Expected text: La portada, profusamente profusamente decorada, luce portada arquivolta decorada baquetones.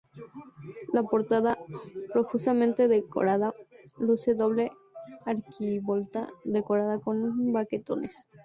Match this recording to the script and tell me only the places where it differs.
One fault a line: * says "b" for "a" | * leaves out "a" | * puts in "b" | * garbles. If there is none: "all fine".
* leaves out "profusamente"
* says "doble" for "portada"
* puts in "con"